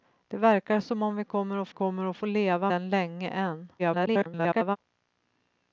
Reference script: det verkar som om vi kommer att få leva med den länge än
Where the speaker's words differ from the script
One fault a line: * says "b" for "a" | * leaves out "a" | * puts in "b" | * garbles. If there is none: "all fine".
* puts in "kommer att"
* leaves out "med"
* garbles